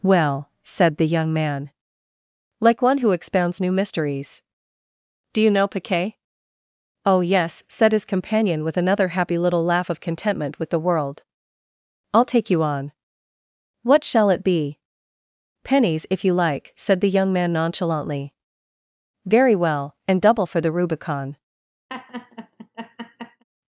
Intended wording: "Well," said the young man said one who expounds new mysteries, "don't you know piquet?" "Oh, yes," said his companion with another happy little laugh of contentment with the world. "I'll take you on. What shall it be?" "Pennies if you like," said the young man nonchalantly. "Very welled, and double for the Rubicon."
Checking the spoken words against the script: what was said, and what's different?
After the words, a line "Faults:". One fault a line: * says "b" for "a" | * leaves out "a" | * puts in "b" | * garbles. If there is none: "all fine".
"Well," said the young man like one who expounds new mysteries, "do you know piquet?" "Oh, yes," said his companion with another happy little laugh of contentment with the world. "I'll take you on. What shall it be?" "Pennies if you like," said the young man nonchalantly. "Very well, and double for the Rubicon."
Faults:
* says "like" for "said"
* says "do" for "don't"
* says "well" for "welled"